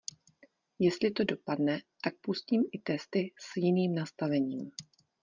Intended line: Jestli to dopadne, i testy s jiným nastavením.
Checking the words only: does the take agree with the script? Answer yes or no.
no